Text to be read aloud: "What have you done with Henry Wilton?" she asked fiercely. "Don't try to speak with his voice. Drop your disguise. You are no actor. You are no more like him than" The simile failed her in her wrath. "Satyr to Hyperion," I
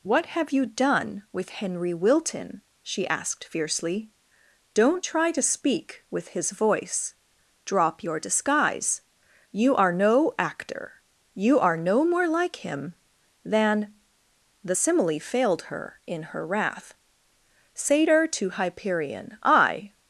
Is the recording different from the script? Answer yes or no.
no